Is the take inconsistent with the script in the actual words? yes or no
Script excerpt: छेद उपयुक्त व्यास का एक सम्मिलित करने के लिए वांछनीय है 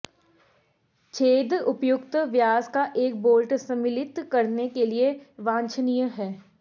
yes